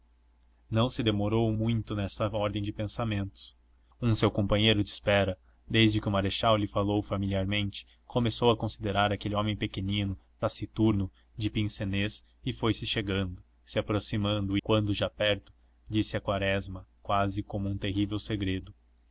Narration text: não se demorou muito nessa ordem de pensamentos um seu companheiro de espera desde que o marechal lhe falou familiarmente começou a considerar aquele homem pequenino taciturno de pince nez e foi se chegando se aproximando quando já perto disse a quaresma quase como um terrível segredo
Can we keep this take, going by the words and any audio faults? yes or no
yes